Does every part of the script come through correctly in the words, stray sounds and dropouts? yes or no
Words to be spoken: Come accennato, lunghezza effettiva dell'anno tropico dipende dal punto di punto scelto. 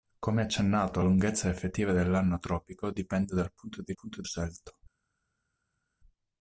yes